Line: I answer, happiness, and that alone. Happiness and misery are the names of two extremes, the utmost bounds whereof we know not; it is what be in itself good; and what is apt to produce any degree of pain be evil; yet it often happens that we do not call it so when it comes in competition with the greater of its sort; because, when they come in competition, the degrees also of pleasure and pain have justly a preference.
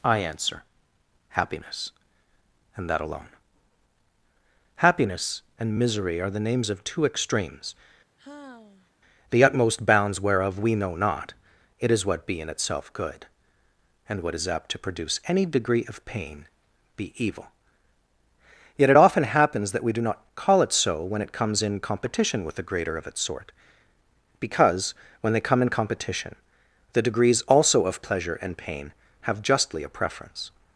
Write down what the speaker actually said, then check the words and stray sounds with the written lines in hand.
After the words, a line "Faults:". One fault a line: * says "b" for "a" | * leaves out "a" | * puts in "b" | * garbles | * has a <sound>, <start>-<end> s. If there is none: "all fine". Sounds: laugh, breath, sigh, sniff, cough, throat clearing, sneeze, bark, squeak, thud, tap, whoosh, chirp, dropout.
I answer, happiness, and that alone. Happiness and misery are the names of two extremes, the utmost bounds whereof we know not; it is what be in itself good; and what is apt to produce any degree of pain be evil; yet it often happens that we do not call it so when it comes in competition with the greater of its sort; because, when they come in competition, the degrees also of pleasure and pain have justly a preference.
Faults:
* has a sigh, 8.2-8.9 s